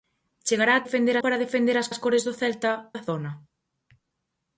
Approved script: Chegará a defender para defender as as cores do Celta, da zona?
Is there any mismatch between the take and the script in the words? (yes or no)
no